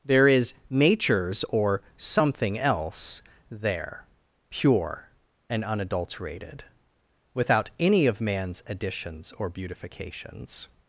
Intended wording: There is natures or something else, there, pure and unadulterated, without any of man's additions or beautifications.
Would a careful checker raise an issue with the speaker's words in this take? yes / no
no